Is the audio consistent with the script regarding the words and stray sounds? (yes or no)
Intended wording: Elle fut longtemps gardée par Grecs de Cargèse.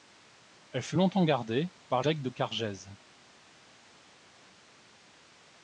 yes